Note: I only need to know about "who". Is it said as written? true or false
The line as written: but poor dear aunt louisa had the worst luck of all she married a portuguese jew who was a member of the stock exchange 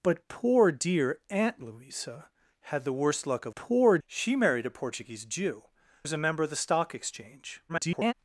false